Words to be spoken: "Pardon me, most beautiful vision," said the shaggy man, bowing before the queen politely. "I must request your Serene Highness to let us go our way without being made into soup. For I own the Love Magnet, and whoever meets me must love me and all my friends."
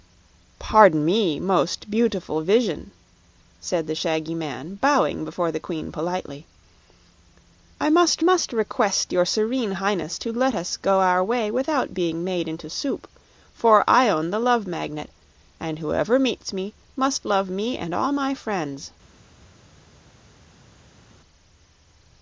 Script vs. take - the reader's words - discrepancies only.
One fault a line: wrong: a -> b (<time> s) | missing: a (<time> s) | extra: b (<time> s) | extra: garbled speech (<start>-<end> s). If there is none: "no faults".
extra: must (8.2 s)